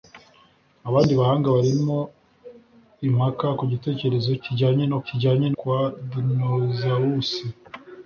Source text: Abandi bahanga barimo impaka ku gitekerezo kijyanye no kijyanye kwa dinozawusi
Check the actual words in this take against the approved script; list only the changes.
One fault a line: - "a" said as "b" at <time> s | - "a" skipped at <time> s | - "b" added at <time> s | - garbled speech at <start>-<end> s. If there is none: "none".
none